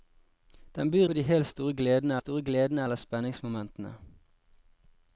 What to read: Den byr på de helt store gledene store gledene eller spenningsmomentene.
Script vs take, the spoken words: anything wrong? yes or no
no